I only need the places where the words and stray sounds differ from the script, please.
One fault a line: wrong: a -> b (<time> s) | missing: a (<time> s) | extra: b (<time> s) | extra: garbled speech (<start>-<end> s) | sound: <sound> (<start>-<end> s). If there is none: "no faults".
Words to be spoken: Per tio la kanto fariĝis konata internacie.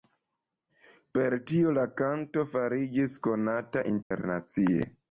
sound: dropout (4.0-4.1 s)